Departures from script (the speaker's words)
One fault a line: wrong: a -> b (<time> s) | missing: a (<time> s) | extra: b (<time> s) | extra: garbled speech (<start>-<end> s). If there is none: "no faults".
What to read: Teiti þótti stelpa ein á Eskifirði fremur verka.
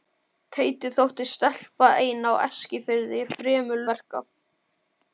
no faults